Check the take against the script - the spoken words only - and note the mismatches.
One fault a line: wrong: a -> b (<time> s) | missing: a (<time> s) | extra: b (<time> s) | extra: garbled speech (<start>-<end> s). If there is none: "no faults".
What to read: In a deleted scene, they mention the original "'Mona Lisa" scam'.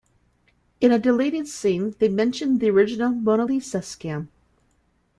no faults